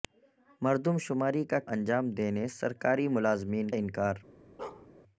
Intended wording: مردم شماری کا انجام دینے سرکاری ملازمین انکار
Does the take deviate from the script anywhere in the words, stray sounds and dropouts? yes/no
yes